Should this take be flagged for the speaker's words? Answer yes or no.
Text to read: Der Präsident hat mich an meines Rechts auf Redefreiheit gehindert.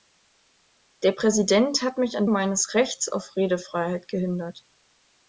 no